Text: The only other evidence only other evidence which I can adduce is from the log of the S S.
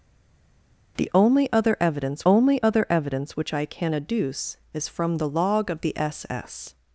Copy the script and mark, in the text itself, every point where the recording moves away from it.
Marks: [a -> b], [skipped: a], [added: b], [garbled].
The only other evidence only other evidence which I can adduce is from the log of the S S.